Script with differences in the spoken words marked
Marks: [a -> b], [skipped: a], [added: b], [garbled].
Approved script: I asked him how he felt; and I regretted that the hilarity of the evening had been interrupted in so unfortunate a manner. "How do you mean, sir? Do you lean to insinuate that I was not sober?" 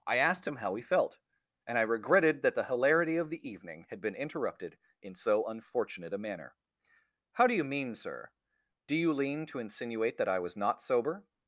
I asked him how he felt; and I regretted that the hilarity of the evening had been interrupted in so unfortunate a manner. "How do you mean, sir? Do you lean to insinuate that I was not sober?"